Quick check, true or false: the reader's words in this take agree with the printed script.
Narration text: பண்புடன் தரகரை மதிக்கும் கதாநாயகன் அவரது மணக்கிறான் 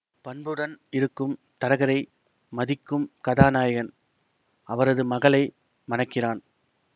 false